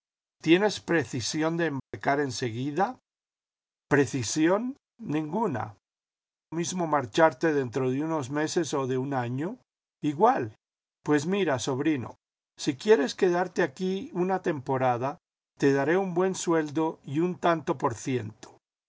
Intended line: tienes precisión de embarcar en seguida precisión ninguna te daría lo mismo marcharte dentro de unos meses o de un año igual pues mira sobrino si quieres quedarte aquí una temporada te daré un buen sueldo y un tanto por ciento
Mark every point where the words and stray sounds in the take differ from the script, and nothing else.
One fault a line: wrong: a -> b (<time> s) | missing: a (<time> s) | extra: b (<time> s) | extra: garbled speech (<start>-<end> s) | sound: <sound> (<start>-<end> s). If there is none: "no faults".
sound: dropout (1.8-1.9 s)
missing: te daría lo (5.8 s)